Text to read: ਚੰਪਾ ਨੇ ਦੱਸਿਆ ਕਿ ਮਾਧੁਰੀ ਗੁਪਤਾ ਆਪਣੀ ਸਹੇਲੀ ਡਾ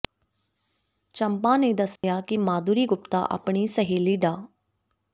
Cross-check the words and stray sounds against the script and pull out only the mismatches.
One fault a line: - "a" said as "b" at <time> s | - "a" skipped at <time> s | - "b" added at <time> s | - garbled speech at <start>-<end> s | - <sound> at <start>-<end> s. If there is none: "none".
- dropout at 2.0-2.0 s